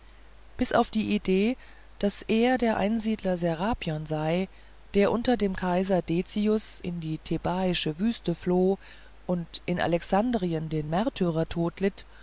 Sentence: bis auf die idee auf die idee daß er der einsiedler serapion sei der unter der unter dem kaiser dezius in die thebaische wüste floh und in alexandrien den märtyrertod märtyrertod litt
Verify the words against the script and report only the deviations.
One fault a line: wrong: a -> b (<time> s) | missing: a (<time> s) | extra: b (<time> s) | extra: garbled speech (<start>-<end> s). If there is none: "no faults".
missing: auf die idee (1.6 s)
missing: der unter (5.3 s)
missing: märtyrertod (11.8 s)